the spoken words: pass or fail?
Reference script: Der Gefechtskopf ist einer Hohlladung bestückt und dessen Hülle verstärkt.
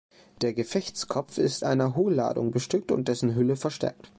pass